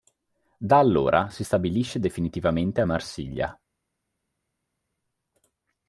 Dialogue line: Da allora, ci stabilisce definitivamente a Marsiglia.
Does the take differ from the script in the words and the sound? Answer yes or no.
yes